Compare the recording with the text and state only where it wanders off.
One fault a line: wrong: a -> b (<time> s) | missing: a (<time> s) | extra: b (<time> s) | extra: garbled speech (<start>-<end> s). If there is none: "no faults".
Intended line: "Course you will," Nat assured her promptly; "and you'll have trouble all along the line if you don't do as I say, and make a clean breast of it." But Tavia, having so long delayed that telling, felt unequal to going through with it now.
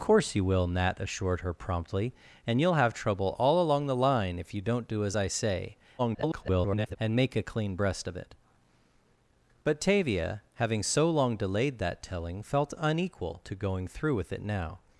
extra: garbled speech (6.0-7.0 s)